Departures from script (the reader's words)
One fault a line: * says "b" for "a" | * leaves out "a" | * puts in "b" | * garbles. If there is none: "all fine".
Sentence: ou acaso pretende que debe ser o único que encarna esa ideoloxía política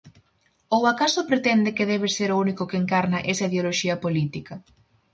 all fine